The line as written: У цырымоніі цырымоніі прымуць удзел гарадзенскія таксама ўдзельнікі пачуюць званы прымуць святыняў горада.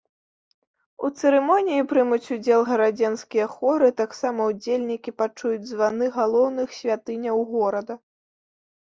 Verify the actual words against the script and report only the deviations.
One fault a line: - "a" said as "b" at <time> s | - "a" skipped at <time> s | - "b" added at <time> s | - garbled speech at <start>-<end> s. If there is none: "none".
- "цырымоніі" skipped at 1.8 s
- "хоры" added at 3.5 s
- "прымуць" said as "галоўных" at 6.2 s